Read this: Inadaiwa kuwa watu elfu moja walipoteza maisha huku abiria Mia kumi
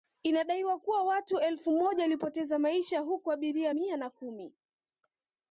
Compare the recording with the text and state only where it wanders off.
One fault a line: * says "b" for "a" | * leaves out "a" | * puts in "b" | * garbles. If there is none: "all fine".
* puts in "na"